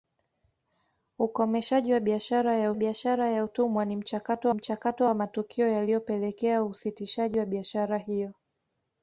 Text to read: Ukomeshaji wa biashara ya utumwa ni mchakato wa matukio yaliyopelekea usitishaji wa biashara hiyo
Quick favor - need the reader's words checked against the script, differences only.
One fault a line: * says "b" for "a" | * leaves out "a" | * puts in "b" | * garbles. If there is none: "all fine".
* puts in "biashara ya"
* puts in "mchakato"